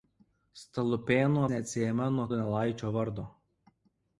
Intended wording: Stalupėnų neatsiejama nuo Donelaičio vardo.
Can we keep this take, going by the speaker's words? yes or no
yes